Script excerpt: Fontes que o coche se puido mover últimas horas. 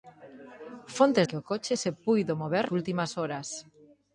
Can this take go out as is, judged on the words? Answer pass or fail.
pass